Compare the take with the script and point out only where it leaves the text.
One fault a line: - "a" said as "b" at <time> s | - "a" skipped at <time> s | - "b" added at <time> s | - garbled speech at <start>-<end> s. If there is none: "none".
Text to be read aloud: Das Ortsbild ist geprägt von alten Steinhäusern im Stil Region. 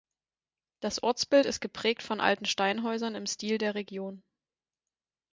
- "der" added at 3.6 s